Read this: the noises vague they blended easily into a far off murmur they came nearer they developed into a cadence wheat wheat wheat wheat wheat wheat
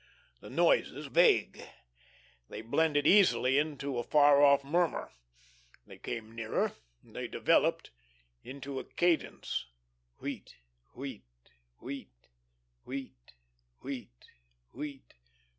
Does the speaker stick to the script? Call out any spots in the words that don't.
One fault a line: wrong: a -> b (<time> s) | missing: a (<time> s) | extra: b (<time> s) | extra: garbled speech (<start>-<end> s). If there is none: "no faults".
no faults